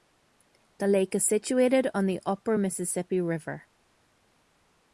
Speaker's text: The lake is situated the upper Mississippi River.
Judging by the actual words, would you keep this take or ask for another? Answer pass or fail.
fail